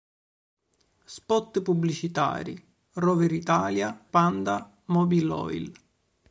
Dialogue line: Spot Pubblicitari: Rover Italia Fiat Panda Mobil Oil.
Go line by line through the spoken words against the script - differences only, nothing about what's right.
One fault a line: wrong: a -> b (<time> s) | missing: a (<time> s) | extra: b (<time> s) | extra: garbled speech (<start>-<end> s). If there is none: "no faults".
missing: Fiat (4.0 s)